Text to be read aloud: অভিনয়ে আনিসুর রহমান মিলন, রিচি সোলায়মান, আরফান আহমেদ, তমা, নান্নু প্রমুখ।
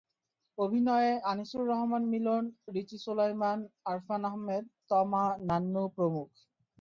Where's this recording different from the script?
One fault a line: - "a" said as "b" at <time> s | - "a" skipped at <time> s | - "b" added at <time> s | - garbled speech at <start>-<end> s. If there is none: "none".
none